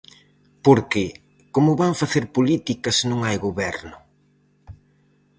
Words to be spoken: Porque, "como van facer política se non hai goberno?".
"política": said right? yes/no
yes